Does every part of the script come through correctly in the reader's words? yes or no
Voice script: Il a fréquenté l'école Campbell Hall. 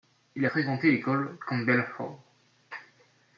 yes